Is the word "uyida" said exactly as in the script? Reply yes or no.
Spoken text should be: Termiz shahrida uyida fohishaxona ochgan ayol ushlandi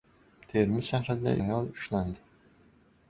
no